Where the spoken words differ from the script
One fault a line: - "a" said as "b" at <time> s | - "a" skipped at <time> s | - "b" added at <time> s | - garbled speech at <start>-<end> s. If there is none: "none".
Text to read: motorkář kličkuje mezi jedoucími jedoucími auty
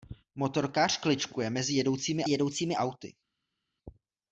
none